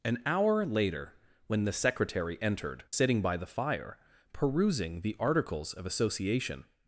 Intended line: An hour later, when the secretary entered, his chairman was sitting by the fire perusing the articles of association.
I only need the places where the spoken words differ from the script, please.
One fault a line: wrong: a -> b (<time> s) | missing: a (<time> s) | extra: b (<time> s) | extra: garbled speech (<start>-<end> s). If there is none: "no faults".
missing: his chairman was (2.9 s)